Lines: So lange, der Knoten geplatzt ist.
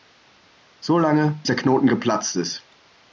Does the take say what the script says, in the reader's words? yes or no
yes